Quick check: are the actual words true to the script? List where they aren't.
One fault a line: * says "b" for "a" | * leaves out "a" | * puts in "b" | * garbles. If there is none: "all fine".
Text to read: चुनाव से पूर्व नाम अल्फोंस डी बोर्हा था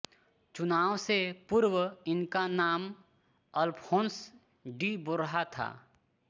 * puts in "इनका"